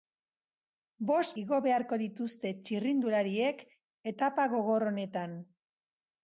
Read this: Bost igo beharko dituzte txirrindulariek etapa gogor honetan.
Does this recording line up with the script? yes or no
yes